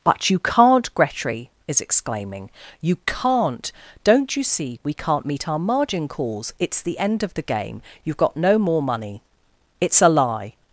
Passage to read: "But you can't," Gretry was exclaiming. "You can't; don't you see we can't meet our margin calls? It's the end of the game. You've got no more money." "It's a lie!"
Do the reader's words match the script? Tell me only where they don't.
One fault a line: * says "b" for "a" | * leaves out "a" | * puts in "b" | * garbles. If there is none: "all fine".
* says "is" for "was"